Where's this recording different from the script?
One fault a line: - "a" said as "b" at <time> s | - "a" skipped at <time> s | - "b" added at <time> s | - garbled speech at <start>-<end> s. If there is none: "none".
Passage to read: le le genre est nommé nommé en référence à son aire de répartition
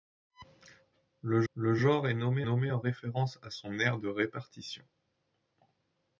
none